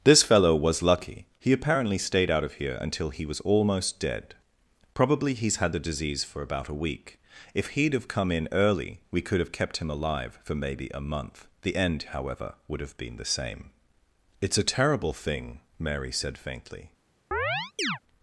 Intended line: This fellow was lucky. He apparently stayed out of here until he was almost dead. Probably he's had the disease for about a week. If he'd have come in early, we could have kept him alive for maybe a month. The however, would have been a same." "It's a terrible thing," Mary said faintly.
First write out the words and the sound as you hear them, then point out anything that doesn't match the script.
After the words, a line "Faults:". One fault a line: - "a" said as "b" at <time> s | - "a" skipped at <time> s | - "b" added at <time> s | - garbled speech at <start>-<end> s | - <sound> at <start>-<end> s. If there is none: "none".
This fellow was lucky. He apparently stayed out of here until he was almost dead. Probably he's had the disease for about a week. If he'd have come in early, we could have kept him alive for maybe a month. The end, however, would have been the same." "It's a terrible thing," Mary said faintly.
Faults:
- "end" added at 11.8 s
- "a" said as "the" at 13.2 s
- chirp at 17.3-18.0 s